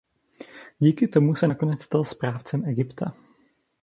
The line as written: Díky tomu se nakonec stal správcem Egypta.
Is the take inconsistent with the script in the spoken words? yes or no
no